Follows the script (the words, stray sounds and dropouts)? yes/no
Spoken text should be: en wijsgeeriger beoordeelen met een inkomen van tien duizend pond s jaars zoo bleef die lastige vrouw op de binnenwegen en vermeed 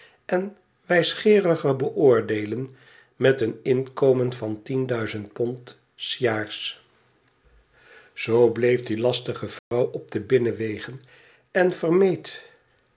no